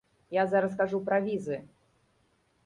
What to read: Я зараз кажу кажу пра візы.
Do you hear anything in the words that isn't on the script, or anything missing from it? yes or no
yes